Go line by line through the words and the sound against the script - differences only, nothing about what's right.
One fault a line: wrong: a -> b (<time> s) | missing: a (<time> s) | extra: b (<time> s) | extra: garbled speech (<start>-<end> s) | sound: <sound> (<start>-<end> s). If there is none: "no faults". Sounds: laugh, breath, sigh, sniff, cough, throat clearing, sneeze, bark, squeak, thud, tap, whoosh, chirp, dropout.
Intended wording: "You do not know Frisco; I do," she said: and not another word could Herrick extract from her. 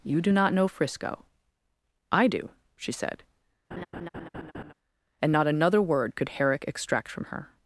sound: laugh (3.7-4.7 s)